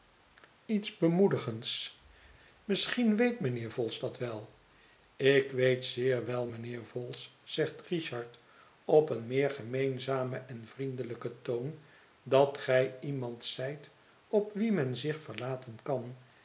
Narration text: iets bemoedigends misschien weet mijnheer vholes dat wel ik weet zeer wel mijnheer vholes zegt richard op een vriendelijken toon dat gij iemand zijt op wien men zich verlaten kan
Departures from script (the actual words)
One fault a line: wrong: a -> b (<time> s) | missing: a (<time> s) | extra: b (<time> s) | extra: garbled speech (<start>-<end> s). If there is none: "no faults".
extra: meer gemeenzamen en (9.3 s)